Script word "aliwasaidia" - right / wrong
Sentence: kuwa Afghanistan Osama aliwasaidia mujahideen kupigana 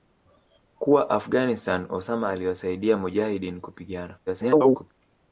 right